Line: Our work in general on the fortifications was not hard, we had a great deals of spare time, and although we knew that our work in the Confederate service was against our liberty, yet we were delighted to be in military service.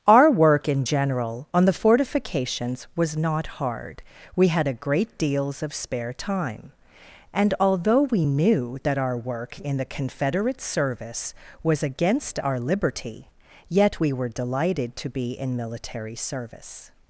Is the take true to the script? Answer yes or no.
yes